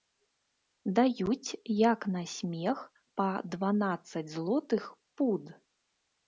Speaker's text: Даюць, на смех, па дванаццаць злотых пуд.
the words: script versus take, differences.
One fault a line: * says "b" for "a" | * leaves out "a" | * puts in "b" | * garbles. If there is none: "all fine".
* puts in "як"